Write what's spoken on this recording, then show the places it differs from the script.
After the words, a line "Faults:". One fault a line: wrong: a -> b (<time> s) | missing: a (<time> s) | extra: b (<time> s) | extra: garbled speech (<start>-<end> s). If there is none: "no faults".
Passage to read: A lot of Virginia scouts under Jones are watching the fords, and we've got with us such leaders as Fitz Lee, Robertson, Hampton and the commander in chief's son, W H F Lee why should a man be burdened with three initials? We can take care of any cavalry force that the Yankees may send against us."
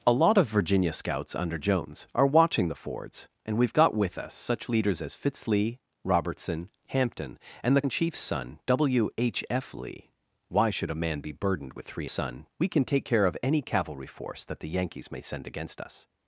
A lot of Virginia scouts under Jones are watching the fords, and we've got with us such leaders as Fitz Lee, Robertson, Hampton and the in chief's son, W H F Lee why should a man be burdened with three son? We can take care of any cavalry force that the Yankees may send against us."
Faults:
missing: commander (7.8 s)
wrong: initials -> son (12.1 s)